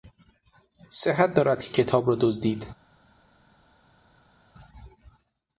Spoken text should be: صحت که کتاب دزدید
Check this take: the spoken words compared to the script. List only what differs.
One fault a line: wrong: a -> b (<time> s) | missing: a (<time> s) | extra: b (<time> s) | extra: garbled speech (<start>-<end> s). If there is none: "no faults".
extra: دارد (1.3 s)
extra: را (2.1 s)